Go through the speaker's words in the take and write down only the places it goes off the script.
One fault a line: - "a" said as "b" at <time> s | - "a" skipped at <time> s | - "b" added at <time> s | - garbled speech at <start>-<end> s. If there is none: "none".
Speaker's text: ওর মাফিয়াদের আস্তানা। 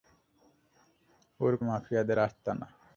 none